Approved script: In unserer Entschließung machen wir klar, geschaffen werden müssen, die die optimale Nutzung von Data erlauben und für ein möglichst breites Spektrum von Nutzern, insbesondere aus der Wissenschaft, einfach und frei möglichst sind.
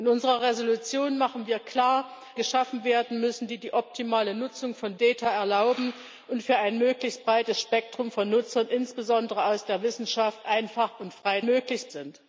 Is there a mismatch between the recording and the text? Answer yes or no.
no